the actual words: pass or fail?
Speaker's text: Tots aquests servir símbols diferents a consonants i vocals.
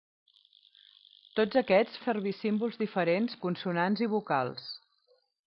pass